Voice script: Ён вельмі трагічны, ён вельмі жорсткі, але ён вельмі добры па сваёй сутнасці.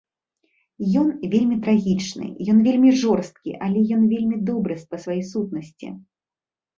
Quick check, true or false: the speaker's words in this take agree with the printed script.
true